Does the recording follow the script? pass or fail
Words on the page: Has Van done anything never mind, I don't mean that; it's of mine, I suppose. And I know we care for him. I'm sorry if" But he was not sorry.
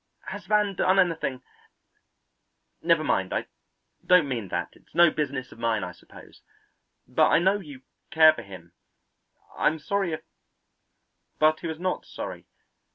fail